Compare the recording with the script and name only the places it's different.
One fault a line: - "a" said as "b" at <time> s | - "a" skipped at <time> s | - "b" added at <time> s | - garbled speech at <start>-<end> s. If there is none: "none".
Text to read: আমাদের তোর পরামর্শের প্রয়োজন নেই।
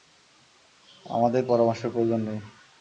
- "তোর" skipped at 1.4 s